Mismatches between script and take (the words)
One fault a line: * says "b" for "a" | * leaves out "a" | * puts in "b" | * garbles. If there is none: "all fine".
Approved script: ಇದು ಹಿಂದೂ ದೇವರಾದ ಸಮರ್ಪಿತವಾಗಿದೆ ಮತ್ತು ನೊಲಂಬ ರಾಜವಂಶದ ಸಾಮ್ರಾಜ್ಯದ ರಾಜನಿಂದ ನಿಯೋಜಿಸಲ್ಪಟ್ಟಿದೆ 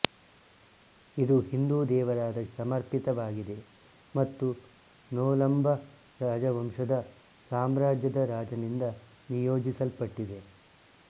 all fine